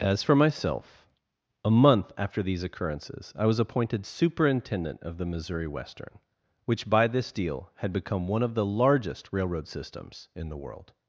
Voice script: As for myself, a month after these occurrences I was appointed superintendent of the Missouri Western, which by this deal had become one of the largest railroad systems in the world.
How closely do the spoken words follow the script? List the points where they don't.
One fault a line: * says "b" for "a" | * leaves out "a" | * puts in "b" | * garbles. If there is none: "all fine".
all fine